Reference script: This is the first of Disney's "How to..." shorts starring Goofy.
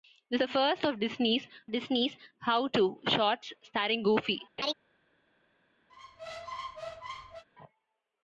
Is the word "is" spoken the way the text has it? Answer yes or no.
no